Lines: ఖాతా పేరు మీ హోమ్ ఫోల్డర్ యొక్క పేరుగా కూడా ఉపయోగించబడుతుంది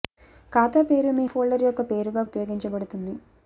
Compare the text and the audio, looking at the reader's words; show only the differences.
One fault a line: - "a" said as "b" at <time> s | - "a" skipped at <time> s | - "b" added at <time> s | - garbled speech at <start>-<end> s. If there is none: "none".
- "హోమ్" skipped at 1.2 s
- "కూడా" skipped at 2.2 s